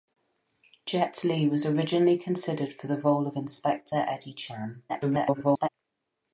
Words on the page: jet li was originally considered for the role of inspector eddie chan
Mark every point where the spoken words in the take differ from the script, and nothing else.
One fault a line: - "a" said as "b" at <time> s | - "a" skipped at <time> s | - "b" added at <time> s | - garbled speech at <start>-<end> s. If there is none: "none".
- garbled speech at 4.9-5.7 s